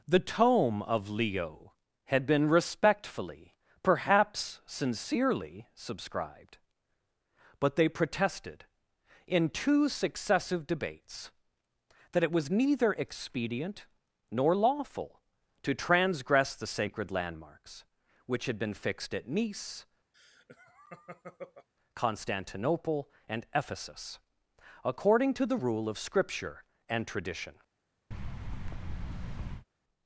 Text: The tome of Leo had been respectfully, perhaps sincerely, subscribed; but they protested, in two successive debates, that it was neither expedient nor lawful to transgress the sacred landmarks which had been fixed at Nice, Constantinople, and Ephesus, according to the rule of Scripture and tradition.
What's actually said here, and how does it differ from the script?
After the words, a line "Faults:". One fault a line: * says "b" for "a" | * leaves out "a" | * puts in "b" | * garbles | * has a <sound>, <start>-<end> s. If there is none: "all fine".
The tome of Leo had been respectfully, perhaps sincerely, subscribed; but they protested, in two successive debates, that it was neither expedient nor lawful to transgress the sacred landmarks which had been fixed at Nice, Constantinople, and Ephesus, according to the rule of Scripture and tradition.
Faults:
* has a laugh, 20.1-21.7 s
* has a thud, 28.1-29.7 s